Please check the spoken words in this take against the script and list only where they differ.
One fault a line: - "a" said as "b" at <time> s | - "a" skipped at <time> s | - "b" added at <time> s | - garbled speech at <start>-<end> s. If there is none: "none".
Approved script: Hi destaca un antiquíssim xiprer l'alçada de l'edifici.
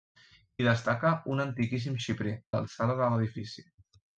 none